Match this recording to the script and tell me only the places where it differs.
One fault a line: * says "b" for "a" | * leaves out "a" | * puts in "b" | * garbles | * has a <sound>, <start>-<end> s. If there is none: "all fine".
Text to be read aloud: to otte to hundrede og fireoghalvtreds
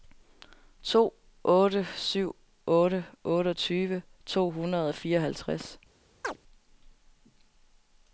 * puts in "syv otte otteogtyve"
* has a chirp, 6.2-6.4 s